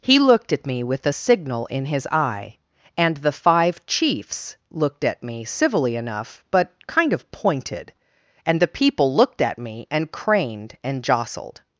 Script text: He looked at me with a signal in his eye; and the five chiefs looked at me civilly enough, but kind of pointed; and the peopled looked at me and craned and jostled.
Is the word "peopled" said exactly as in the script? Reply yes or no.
no